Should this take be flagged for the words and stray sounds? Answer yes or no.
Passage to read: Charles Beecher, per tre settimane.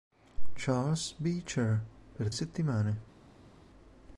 yes